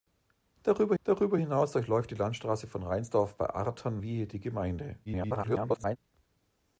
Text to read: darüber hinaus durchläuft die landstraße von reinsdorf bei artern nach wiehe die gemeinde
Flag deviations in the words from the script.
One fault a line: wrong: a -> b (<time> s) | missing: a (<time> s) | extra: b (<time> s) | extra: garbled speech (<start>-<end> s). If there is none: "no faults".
extra: darüber (1.0 s)
missing: nach (4.0 s)
extra: garbled speech (5.1-6.0 s)